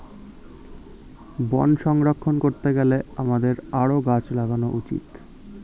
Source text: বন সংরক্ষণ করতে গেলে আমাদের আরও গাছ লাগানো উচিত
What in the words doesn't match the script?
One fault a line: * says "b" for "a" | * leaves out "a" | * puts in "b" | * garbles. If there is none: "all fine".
all fine